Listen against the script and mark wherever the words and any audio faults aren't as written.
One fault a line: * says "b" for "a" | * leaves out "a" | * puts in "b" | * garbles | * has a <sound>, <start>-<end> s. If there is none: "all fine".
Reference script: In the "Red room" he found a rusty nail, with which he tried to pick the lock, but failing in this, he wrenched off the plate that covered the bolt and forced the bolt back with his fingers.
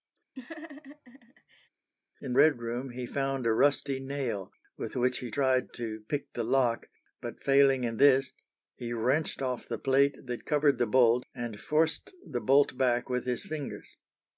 * has a laugh, 0.4-1.7 s
* leaves out "the"